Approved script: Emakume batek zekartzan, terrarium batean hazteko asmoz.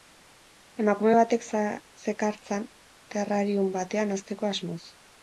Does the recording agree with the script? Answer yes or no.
yes